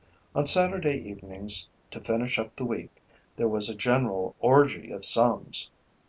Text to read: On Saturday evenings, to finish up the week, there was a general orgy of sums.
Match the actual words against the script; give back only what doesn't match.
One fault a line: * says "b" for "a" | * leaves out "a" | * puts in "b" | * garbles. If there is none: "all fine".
all fine